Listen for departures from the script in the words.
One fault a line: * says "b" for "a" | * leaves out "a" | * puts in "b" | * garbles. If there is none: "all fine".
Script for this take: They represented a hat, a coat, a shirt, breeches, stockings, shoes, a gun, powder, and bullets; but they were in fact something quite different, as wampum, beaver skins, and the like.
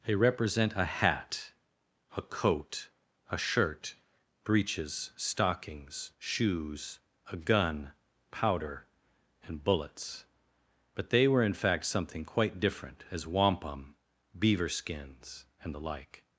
* says "represent" for "represented"